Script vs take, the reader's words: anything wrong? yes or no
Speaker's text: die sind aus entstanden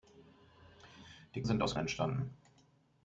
no